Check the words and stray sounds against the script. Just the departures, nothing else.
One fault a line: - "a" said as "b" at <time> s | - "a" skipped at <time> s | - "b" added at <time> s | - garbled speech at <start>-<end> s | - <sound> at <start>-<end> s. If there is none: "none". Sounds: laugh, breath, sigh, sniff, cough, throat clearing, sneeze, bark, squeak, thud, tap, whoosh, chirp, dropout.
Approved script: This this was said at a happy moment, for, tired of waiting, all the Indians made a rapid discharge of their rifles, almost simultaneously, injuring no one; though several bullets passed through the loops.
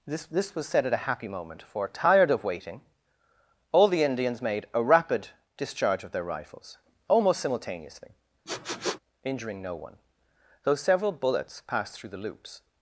- sniff at 8.5-9.0 s